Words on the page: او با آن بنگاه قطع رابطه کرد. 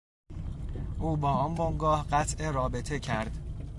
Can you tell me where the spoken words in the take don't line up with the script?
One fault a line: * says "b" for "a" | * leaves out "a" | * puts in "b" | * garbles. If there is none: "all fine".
all fine